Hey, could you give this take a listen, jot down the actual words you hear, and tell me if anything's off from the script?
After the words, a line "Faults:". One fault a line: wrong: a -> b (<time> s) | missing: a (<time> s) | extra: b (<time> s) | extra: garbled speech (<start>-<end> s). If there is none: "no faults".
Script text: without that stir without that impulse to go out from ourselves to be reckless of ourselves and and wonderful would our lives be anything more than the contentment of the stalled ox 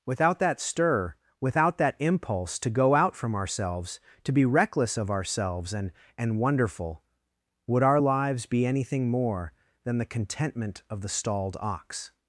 without that stir without that impulse to go out from ourselves to be reckless of ourselves and and wonderful would our lives be anything more than the contentment of the stalled ox
Faults:
no faults